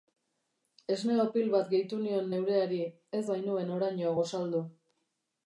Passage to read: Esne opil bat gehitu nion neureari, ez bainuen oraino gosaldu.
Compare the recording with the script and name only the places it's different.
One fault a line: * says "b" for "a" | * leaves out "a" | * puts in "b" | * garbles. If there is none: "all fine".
all fine